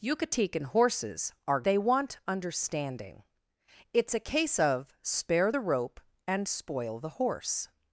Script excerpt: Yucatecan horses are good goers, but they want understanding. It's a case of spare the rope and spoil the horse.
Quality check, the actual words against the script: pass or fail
fail